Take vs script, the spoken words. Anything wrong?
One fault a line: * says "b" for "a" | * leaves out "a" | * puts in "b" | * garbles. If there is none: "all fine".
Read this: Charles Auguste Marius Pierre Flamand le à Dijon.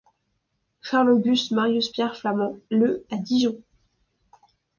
all fine